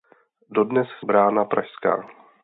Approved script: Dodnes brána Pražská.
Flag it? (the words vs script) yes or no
no